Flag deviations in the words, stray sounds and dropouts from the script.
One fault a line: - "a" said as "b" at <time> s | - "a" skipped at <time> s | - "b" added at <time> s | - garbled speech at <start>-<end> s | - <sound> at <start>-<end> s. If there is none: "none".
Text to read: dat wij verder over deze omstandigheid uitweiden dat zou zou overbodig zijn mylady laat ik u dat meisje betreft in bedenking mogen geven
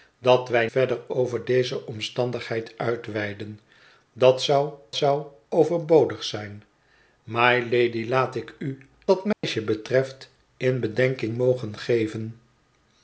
- dropout at 9.3-9.4 s